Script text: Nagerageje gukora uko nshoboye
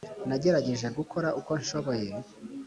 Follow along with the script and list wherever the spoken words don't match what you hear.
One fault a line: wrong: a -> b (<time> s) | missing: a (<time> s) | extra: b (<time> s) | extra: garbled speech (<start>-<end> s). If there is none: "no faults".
no faults